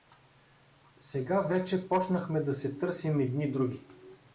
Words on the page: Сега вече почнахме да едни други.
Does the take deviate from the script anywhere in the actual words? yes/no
yes